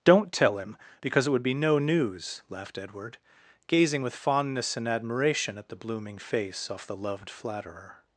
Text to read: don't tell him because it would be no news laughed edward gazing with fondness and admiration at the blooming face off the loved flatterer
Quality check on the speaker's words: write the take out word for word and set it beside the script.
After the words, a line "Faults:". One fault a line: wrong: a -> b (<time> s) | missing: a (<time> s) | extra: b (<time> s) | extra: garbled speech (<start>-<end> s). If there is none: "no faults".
don't tell him because it would be no news laughed edward gazing with fondness and admiration at the blooming face off the loved flatterer
Faults:
no faults